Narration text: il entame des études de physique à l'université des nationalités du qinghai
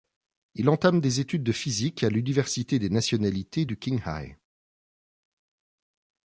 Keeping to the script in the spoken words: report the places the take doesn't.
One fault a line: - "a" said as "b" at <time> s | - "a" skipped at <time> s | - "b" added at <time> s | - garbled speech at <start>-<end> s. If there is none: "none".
none